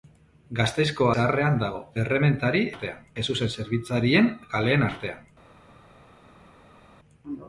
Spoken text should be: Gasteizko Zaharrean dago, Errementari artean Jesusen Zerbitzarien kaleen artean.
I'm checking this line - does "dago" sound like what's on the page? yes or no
yes